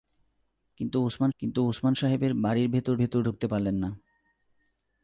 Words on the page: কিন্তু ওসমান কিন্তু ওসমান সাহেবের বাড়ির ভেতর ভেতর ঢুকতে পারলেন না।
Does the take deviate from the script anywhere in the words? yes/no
no